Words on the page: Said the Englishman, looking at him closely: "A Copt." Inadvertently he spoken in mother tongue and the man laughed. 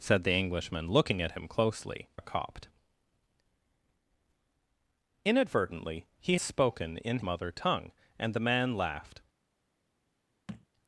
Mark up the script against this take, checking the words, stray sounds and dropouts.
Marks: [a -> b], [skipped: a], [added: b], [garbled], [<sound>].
Said the Englishman, looking at him closely: "A Copt." Inadvertently he spoken in mother tongue and the man laughed. [thud]